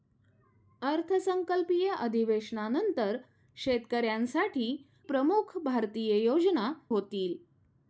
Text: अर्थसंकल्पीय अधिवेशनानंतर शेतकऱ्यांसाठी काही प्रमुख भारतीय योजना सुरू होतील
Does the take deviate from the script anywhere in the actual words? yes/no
yes